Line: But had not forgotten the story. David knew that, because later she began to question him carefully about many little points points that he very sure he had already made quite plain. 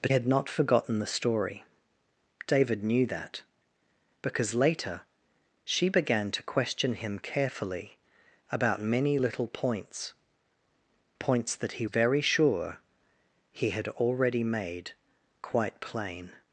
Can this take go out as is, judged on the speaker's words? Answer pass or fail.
pass